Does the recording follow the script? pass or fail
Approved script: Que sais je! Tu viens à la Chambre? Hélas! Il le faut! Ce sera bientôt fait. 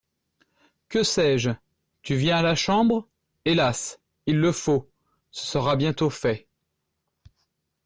pass